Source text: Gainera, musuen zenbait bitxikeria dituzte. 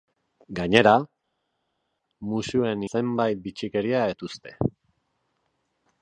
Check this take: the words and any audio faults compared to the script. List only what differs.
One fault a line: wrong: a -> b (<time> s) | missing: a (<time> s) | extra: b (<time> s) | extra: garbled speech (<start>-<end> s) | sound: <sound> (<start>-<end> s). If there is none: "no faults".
no faults